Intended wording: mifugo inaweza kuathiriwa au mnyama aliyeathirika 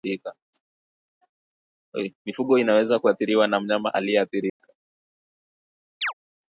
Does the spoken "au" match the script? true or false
false